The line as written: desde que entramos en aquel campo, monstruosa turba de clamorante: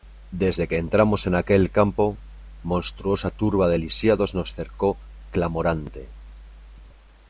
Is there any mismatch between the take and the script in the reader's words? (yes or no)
yes